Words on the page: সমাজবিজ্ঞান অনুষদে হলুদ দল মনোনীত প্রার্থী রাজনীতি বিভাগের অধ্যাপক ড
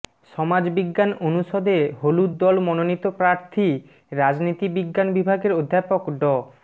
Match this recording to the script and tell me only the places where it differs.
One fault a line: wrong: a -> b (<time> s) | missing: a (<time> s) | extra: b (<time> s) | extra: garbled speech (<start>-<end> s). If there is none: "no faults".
extra: বিজ্ঞান (4.8 s)